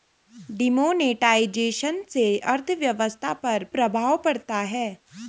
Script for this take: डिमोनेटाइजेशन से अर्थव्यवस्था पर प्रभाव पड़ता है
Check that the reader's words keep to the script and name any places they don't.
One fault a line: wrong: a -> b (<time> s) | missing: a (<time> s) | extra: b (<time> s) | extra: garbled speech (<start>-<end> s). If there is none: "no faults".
no faults